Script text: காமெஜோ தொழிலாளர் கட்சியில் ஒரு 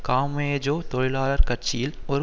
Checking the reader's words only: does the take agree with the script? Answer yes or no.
yes